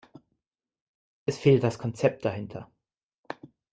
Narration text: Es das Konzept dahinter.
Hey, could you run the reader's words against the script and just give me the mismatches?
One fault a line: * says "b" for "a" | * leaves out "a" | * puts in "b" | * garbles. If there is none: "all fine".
* puts in "fehlt"